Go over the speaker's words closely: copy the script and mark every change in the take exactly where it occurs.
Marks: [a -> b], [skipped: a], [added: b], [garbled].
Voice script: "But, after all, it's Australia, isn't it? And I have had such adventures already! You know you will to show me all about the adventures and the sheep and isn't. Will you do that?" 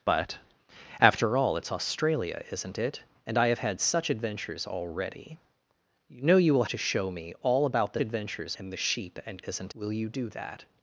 "But, after all, it's Australia, isn't it? And I have had such adventures already! You know you will to show me all about the adventures and the sheep and isn't. Will you do that?"